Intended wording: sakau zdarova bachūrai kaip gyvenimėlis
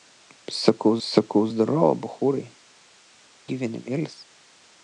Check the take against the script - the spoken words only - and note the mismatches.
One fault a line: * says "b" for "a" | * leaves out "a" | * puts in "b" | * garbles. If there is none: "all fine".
* puts in "sakau"
* leaves out "kaip"